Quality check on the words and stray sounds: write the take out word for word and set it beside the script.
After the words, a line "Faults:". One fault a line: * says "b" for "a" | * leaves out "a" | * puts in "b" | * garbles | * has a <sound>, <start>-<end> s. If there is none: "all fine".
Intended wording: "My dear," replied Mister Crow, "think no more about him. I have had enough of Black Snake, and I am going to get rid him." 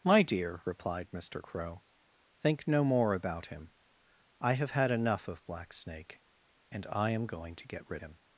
"My dear," replied Mister Crow, "think no more about him. I have had enough of Black Snake, and I am going to get rid him."
Faults:
all fine